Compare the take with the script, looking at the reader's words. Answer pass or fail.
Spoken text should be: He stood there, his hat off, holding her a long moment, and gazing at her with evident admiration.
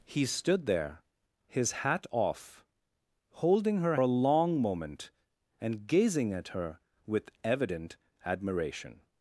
pass